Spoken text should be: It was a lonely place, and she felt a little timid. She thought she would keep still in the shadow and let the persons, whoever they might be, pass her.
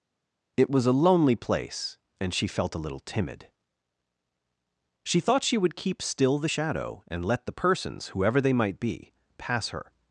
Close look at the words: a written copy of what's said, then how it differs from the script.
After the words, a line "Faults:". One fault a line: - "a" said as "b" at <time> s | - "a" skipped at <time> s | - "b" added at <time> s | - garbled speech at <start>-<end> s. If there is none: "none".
It was a lonely place, and she felt a little timid. She thought she would keep still the shadow and let the persons, whoever they might be, pass her.
Faults:
- "in" skipped at 6.4 s